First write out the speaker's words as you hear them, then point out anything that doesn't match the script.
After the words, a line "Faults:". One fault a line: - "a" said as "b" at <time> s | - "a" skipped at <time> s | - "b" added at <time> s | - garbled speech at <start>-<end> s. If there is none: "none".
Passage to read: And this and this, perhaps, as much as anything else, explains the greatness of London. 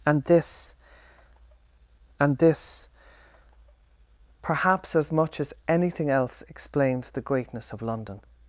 And this and this, perhaps, as much as anything else, explains the greatness of London.
Faults:
none